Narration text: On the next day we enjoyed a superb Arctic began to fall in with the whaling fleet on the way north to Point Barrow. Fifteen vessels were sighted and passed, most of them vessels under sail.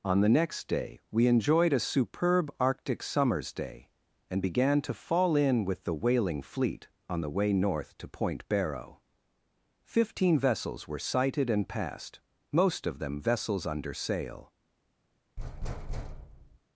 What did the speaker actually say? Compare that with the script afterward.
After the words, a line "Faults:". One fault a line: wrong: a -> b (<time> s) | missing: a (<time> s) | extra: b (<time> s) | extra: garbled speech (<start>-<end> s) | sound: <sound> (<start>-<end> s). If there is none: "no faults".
On the next day we enjoyed a superb Arctic summer's day, and began to fall in with the whaling fleet on the way north to Point Barrow. Fifteen vessels were sighted and passed, most of them vessels under sail.
Faults:
extra: summer's day and (3.0 s)
sound: thud (15.4-16.6 s)